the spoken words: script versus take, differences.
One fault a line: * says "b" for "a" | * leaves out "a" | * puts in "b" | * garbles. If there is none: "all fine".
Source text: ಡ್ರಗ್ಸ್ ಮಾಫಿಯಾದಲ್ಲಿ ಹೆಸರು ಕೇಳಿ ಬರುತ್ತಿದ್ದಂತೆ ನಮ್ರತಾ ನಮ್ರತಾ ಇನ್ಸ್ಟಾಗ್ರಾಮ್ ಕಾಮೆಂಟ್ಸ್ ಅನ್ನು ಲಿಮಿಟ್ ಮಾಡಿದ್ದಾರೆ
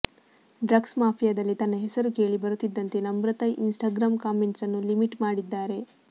* puts in "ತನ್ನ"
* leaves out "ನಮ್ರತಾ"